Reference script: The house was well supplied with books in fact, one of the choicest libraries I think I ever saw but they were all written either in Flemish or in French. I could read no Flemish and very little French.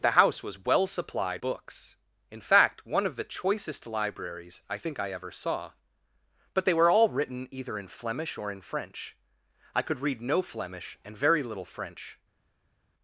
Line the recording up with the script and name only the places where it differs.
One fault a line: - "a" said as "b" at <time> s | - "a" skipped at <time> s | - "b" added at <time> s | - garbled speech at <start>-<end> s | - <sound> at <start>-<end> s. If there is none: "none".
- "with" skipped at 1.4 s